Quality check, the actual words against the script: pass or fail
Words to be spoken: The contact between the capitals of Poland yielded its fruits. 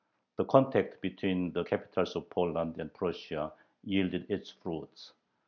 fail